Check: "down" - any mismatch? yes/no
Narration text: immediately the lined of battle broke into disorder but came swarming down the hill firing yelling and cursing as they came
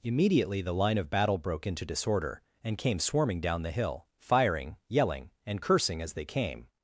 no